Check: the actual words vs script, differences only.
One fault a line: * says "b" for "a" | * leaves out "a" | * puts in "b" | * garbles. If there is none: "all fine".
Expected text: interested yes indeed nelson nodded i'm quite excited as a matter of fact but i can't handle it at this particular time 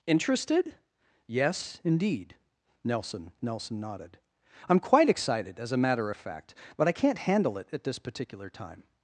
* puts in "nelson"